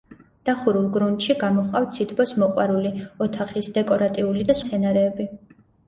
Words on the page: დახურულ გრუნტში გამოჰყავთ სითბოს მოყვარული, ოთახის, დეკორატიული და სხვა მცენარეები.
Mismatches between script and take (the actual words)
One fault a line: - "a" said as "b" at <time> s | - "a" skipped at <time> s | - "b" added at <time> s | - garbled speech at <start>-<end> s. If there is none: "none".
- "სხვა" skipped at 4.6 s